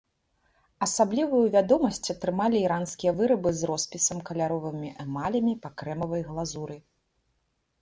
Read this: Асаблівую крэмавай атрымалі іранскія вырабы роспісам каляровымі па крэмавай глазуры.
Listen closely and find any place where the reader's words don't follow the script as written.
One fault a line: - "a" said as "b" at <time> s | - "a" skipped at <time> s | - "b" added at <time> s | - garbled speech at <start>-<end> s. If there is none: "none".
- "крэмавай" said as "вядомасць" at 1.6 s
- "з" added at 3.6 s
- "эмалямі" added at 5.1 s